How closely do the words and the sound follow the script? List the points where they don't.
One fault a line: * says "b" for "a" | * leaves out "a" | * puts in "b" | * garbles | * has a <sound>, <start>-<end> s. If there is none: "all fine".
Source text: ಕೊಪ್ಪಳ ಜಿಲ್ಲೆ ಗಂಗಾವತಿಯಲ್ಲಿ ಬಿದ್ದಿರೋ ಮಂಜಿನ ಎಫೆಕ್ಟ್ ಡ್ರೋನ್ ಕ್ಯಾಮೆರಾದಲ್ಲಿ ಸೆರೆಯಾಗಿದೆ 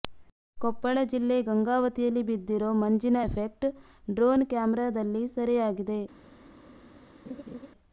* has a laugh, 7.2-7.7 s